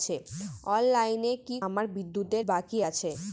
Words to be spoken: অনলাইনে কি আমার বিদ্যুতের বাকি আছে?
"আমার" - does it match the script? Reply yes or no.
yes